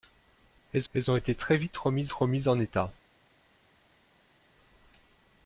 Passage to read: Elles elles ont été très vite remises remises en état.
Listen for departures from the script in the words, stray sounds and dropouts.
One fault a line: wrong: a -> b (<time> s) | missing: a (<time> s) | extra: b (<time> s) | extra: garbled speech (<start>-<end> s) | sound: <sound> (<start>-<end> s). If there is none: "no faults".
no faults